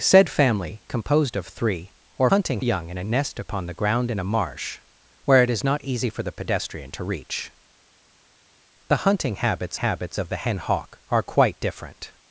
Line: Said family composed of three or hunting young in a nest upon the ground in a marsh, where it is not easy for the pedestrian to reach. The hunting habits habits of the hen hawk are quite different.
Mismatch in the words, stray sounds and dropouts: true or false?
false